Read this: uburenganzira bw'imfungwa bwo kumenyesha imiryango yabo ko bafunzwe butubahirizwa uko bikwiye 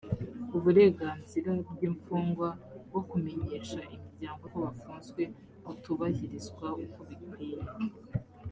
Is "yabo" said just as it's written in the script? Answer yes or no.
no